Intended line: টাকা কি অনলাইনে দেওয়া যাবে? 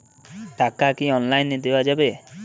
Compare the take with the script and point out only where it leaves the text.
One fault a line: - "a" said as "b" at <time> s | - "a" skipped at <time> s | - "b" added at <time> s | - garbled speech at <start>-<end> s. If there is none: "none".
none